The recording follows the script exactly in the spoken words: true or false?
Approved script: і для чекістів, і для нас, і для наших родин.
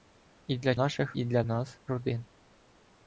false